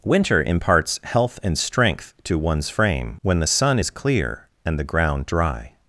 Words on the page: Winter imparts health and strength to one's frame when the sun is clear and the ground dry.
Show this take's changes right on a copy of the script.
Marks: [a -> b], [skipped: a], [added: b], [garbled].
Winter imparts health and strength to one's frame when the sun is clear and the ground dry.